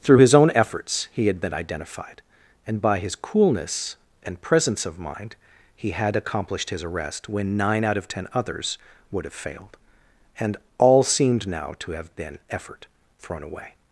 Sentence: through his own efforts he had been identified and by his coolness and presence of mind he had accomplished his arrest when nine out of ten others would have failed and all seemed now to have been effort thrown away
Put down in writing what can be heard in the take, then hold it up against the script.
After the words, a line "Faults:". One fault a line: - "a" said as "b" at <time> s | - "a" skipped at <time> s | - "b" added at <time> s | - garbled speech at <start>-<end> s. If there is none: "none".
through his own efforts he had been identified and by his coolness and presence of mind he had accomplished his arrest when nine out of ten others would have failed and all seemed now to have been effort thrown away
Faults:
none